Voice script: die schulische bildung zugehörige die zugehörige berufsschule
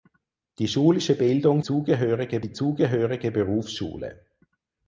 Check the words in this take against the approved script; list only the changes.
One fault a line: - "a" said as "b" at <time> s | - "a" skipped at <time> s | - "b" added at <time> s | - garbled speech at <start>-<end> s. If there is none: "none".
none